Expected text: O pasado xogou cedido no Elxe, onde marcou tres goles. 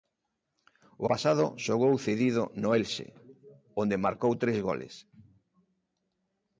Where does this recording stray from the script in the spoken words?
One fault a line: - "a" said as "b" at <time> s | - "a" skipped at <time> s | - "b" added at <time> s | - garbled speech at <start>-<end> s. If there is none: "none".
none